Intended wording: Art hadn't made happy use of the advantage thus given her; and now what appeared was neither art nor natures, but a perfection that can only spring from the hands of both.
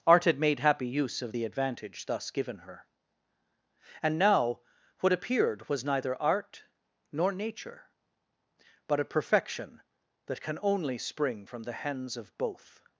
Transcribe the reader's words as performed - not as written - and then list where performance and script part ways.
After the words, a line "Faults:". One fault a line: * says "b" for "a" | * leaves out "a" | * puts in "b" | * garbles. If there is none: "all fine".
Art had made happy use of the advantage thus given her; and now what appeared was neither art nor nature, but a perfection that can only spring from the hands of both.
Faults:
* says "had" for "hadn't"
* says "nature" for "natures"